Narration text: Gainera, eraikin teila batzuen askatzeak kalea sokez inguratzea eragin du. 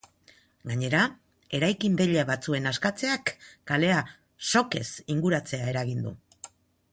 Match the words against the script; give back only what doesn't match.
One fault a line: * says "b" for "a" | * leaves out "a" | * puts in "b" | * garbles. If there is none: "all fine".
all fine